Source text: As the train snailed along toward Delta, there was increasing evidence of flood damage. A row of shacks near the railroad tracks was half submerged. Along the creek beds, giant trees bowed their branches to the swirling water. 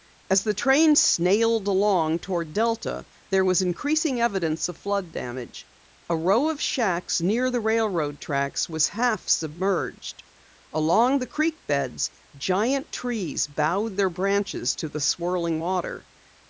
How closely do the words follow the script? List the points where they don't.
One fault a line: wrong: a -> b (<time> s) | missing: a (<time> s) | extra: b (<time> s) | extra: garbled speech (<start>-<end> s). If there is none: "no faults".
no faults